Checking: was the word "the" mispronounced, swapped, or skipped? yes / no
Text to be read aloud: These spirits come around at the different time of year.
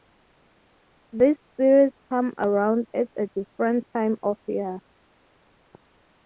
yes